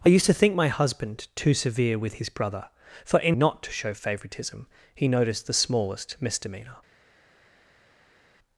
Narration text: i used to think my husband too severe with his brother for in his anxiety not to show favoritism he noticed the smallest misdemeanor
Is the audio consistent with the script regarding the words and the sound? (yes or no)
no